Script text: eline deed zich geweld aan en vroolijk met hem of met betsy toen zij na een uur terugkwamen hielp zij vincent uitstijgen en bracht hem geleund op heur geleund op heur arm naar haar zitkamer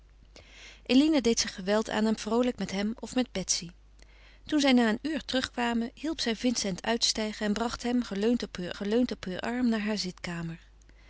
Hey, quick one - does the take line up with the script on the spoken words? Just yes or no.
yes